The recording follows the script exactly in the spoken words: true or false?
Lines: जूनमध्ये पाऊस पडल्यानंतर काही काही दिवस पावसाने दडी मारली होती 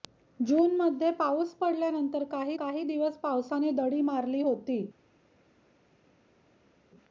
true